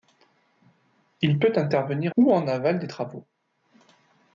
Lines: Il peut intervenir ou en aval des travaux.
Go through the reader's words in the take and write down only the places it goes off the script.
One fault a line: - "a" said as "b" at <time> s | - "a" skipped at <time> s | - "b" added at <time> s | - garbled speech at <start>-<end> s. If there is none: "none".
none